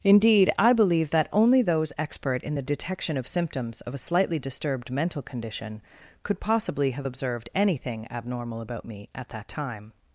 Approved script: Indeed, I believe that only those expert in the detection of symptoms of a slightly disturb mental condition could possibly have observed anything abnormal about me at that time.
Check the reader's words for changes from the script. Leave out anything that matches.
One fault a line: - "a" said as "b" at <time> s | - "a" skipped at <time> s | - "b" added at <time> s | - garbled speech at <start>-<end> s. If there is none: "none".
- "disturb" said as "disturbed" at 4.4 s